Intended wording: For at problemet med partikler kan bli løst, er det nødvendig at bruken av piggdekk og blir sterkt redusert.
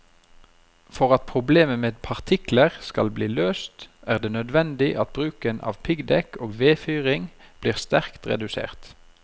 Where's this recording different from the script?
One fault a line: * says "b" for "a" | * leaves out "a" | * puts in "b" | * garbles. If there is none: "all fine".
* says "skal" for "kan"
* puts in "vedfyring"